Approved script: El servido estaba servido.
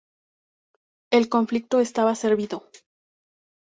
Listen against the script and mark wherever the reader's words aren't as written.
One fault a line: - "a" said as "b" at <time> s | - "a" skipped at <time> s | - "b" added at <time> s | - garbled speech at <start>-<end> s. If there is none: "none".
- "servido" said as "conflicto" at 1.3 s